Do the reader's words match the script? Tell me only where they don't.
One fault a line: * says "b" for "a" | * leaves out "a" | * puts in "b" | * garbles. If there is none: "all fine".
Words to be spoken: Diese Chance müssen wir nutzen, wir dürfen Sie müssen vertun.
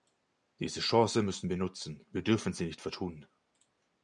* says "nicht" for "müssen"